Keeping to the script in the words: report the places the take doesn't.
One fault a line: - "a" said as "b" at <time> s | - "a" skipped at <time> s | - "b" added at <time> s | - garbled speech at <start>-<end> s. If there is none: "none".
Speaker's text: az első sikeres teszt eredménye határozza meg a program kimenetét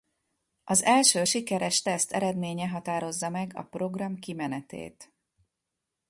none